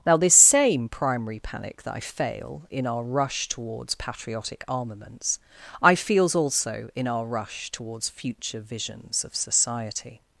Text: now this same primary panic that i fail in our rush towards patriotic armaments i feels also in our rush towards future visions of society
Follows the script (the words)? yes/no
yes